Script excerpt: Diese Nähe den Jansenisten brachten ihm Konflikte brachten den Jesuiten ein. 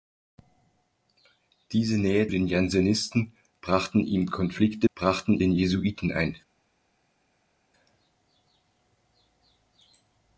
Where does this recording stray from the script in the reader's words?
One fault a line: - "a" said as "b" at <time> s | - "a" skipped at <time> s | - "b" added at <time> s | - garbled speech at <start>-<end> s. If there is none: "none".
none